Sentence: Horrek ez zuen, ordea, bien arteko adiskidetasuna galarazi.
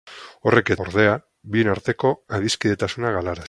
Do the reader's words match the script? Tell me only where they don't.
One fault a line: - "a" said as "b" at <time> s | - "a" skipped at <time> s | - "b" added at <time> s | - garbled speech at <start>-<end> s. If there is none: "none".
- "zuen" skipped at 0.8 s